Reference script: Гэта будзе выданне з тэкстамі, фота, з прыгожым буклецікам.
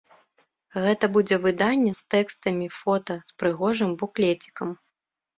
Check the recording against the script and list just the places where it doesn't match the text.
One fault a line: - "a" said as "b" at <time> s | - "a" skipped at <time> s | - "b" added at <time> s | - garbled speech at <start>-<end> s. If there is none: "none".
none